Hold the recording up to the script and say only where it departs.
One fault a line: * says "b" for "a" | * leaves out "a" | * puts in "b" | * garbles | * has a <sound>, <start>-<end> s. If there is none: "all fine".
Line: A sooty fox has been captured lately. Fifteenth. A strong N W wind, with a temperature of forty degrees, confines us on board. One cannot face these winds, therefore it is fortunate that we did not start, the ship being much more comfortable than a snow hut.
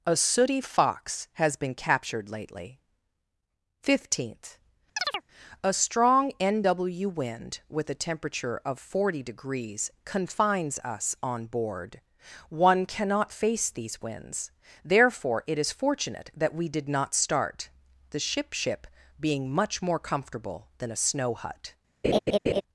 * has a chirp, 5.0-5.2 s
* puts in "ship"
* has a laugh, 22.0-22.6 s